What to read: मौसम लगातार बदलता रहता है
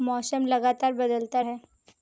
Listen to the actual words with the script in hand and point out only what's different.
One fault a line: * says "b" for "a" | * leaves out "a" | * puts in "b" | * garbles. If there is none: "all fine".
* leaves out "रहता"